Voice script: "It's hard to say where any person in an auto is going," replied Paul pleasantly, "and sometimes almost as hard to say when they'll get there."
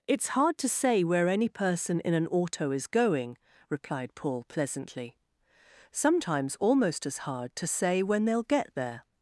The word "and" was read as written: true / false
false